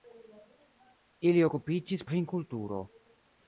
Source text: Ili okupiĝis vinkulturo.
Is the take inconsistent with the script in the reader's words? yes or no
no